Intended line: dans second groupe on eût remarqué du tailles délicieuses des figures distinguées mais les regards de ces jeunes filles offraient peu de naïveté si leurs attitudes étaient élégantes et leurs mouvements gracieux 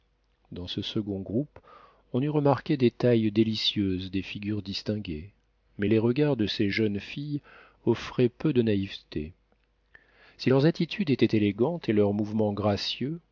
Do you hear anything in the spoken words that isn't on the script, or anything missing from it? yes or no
yes